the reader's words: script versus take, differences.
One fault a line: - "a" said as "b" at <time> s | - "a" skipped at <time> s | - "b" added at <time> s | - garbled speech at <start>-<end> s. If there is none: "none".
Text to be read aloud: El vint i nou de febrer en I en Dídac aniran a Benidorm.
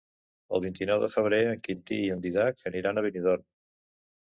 - "Quintí" added at 1.7 s